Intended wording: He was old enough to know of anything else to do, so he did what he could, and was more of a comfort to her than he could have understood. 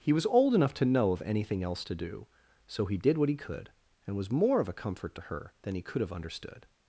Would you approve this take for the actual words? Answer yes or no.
yes